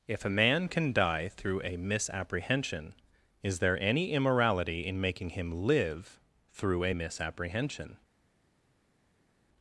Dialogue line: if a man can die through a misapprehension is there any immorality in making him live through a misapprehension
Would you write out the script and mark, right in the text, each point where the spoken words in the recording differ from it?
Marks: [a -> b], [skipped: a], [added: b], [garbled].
if a man can die through a misapprehension is there any immorality in making him live through a misapprehension